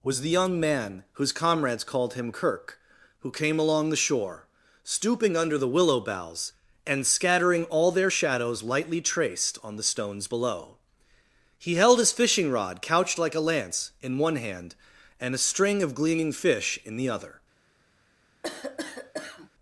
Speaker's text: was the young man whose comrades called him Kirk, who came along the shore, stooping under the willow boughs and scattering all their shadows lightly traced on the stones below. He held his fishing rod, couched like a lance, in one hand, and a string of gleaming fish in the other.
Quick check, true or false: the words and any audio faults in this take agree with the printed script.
false